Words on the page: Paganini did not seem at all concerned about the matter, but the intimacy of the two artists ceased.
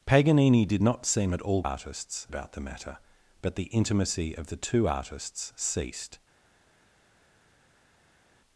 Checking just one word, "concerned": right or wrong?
wrong